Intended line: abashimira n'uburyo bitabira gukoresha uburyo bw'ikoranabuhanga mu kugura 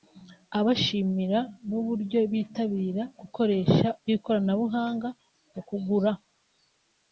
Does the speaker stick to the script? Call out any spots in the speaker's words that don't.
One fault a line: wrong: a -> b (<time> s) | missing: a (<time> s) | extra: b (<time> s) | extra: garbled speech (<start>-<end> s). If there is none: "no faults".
missing: uburyo (3.9 s)